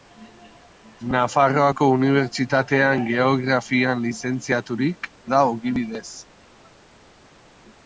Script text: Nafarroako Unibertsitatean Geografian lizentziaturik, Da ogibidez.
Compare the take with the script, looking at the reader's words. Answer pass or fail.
pass